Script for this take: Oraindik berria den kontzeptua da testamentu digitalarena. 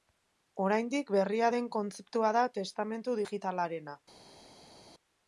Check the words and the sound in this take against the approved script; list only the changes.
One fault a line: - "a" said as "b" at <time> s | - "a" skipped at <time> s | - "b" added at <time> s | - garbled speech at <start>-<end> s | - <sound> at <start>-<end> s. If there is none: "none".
none